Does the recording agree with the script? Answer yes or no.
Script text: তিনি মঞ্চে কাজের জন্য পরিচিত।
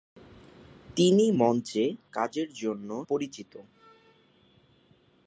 yes